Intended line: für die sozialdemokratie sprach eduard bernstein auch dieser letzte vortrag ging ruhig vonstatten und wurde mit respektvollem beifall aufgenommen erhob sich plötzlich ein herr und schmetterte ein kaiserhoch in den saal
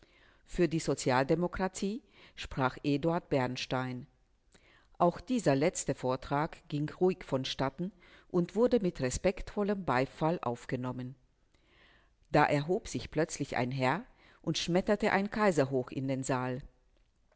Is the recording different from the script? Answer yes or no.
yes